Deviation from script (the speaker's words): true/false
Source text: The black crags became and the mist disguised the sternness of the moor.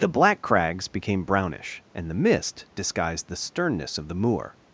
true